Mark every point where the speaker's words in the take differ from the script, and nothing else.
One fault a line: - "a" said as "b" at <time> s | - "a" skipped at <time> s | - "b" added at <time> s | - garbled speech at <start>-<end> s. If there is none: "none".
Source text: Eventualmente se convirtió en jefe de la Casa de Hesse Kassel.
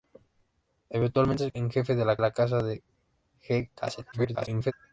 - "convirtió" skipped at 1.5 s
- "la" added at 2.2 s
- garbled speech at 4.1-4.7 s